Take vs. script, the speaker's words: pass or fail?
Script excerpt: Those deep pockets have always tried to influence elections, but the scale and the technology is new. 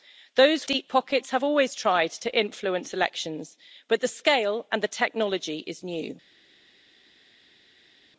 pass